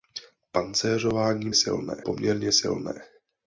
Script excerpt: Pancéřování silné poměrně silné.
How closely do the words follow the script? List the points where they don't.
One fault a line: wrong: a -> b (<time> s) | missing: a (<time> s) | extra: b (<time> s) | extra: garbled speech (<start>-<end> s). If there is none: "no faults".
no faults